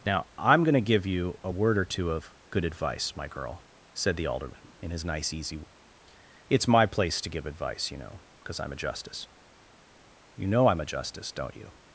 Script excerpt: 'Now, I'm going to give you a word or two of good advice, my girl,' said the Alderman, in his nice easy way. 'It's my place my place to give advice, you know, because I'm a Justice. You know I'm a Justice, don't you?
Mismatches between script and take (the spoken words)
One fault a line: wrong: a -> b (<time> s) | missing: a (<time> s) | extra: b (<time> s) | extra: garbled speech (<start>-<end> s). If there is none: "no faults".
missing: my place (7.2 s)